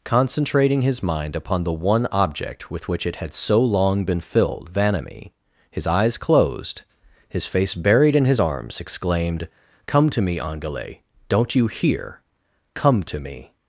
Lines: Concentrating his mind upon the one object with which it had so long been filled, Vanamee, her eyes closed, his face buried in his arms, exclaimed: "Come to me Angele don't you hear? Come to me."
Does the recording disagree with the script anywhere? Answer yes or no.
yes